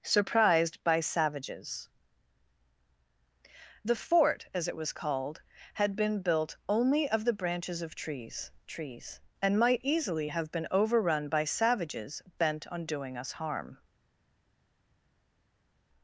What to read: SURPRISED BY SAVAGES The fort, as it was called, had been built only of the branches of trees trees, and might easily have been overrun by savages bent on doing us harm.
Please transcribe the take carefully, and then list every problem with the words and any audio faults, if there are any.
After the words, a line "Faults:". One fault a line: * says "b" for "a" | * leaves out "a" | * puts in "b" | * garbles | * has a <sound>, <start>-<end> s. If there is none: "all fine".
SURPRISED BY SAVAGES The fort, as it was called, had been built only of the branches of trees trees, and might easily have been overrun by savages bent on doing us harm.
Faults:
all fine